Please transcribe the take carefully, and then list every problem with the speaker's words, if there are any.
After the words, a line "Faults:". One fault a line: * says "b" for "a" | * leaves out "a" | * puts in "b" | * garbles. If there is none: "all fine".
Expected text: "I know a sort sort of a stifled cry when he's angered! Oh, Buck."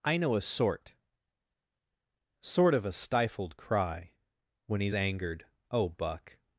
"I know a sort sort of a stifled cry when he's angered! Oh, Buck."
Faults:
all fine